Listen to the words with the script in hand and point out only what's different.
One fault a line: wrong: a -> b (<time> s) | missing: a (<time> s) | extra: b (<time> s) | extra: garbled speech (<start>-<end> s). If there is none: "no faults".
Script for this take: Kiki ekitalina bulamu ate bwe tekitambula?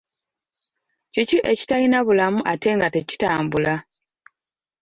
wrong: bwe -> nga (2.8 s)